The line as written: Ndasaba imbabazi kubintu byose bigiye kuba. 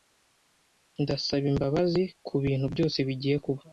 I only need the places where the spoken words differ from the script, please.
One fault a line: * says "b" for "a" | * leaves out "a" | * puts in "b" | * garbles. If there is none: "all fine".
all fine